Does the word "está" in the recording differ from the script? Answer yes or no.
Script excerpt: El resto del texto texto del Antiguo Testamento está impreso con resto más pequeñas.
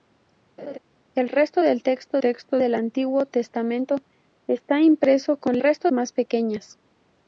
no